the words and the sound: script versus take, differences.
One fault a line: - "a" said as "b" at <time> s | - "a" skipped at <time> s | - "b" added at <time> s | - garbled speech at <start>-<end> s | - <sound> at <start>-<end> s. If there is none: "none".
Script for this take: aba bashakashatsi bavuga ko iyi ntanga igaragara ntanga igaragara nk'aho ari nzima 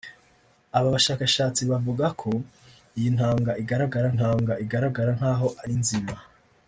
none